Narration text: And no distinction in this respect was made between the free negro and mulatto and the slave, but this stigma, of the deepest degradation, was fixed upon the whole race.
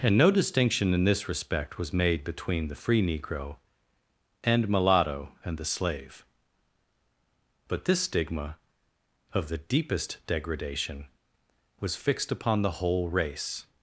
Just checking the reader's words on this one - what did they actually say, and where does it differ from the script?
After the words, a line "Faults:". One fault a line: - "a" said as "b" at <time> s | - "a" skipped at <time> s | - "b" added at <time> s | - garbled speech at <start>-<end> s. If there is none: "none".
And no distinction in this respect was made between the free negro and mulatto and the slave, but this stigma, of the deepest degradation, was fixed upon the whole race.
Faults:
none